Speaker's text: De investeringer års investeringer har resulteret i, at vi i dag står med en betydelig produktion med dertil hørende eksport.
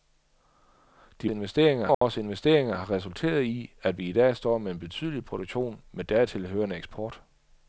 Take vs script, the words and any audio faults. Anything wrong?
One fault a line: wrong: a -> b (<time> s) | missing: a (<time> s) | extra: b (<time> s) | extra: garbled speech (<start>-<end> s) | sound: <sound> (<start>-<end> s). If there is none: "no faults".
sound: dropout (1.9-2.0 s)